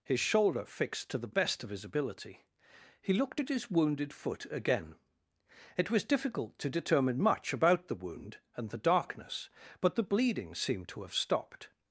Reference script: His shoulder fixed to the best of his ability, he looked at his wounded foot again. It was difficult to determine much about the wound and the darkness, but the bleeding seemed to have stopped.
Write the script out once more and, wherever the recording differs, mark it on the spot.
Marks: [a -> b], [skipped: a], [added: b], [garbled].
His shoulder fixed to the best of his ability, he looked at his wounded foot again. It was difficult to determine much about the wound and the darkness, but the bleeding seemed to have stopped.